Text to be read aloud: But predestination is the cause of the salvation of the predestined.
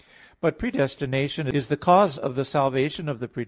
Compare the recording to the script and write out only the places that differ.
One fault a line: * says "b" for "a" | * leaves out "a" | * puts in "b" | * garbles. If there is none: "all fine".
all fine